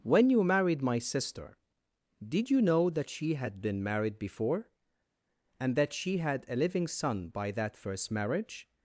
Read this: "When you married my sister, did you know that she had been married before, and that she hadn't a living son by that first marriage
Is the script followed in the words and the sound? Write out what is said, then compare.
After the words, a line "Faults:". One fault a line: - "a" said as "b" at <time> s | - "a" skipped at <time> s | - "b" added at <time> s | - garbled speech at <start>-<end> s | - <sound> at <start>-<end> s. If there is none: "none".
"When you married my sister, did you know that she had been married before, and that she had a living son by that first marriage
Faults:
- "hadn't" said as "had" at 6.2 s